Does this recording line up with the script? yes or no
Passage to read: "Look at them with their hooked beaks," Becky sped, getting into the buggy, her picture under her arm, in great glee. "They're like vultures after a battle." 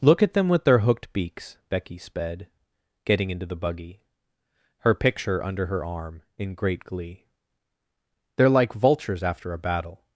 yes